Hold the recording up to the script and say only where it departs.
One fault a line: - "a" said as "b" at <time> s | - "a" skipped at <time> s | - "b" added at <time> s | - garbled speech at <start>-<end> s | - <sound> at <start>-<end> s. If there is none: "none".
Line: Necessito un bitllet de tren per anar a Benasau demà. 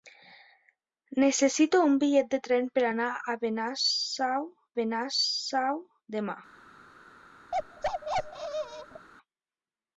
- "Benasau" added at 4.8 s
- bark at 7.5-9.1 s